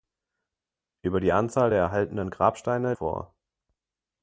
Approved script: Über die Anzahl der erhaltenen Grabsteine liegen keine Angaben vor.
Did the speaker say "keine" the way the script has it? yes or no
no